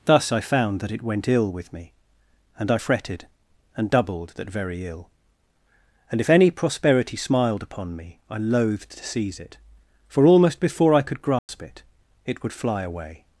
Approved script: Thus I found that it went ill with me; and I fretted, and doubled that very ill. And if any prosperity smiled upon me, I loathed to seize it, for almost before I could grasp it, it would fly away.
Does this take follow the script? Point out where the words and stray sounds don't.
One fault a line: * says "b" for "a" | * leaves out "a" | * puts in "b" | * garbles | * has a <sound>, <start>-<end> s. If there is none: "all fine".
* has a dropout, 11.4-11.5 s